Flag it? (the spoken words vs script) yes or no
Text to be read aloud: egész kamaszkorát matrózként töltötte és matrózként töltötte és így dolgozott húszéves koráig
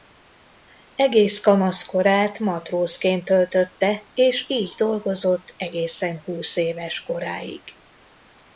yes